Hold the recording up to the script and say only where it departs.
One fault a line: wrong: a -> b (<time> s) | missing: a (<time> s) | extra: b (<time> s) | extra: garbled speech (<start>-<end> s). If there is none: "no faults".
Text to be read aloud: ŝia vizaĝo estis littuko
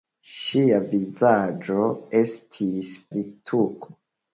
no faults